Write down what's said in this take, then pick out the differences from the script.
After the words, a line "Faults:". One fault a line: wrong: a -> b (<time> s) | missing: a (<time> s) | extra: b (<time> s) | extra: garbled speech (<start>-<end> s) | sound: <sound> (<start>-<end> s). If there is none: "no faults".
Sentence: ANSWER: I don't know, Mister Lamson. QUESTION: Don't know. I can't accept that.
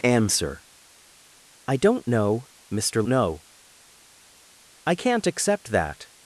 ANSWER: I don't know, Mister Know. I can't accept that.
Faults:
missing: Lamson QUESTION Don't (3.0 s)